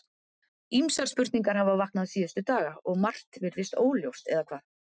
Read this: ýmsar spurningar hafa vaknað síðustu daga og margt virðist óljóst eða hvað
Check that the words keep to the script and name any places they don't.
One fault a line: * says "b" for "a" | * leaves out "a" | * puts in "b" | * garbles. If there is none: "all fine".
all fine